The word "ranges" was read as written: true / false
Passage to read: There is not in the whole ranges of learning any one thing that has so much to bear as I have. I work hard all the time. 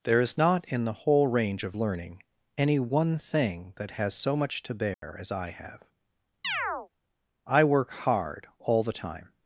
false